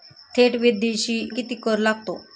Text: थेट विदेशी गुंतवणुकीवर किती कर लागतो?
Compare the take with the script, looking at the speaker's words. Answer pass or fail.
fail